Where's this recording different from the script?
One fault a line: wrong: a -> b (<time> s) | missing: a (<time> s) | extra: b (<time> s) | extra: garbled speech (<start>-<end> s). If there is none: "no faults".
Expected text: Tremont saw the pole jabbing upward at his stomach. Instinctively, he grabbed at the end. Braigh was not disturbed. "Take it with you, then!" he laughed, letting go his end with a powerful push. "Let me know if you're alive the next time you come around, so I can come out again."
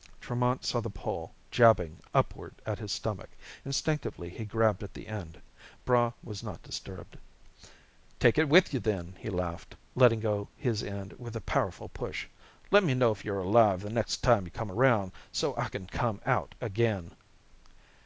no faults